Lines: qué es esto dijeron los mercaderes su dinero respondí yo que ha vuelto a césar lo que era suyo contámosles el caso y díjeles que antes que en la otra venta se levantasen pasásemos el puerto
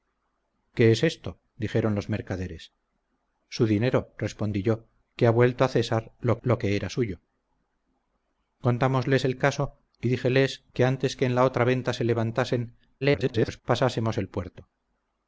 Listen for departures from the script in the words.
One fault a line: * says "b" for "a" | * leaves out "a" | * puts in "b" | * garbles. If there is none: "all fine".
* puts in "lo"
* garbles